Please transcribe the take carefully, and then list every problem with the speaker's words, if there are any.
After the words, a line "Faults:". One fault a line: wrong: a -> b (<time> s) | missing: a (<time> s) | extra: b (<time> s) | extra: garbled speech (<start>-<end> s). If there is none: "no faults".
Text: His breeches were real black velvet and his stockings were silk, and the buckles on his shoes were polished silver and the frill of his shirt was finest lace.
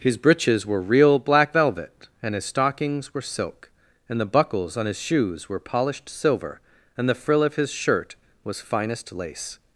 His breeches were real black velvet and his stockings were silk, and the buckles on his shoes were polished silver and the frill of his shirt was finest lace.
Faults:
no faults